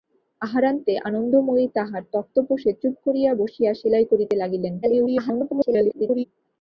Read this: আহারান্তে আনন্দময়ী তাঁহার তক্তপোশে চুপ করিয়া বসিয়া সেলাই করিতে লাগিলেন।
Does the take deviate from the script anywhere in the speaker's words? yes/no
yes